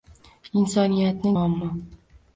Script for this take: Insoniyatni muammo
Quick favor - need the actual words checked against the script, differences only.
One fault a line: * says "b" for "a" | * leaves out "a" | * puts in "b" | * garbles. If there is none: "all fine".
all fine